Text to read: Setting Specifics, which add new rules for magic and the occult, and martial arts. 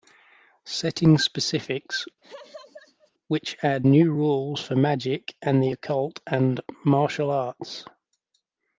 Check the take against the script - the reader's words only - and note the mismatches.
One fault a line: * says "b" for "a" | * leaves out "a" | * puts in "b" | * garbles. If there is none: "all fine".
all fine